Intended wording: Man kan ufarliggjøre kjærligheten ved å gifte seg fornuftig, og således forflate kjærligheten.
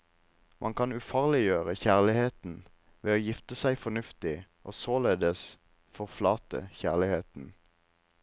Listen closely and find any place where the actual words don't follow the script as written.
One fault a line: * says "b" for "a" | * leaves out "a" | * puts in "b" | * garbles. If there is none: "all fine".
all fine